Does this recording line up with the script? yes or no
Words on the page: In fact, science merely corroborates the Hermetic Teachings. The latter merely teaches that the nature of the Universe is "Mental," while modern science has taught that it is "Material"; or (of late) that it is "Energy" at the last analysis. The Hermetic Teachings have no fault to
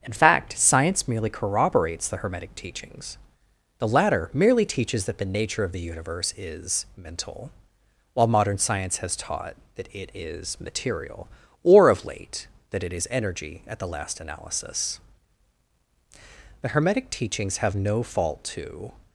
yes